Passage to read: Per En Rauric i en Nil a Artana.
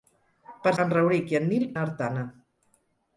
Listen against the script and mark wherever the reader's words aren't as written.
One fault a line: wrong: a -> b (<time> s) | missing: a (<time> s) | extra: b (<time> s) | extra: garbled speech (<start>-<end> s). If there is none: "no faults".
no faults